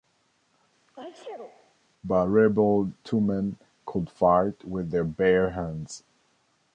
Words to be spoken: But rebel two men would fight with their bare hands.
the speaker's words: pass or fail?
fail